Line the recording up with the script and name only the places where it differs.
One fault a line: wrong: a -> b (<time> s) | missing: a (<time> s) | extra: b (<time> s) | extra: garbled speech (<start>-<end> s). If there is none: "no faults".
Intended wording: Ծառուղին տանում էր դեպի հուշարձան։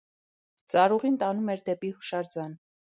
no faults